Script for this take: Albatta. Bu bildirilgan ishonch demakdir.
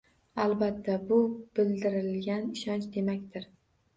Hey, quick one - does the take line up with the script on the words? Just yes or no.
yes